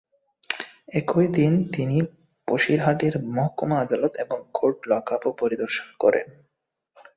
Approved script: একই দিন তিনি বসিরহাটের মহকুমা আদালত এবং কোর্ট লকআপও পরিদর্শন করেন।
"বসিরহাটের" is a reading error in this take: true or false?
false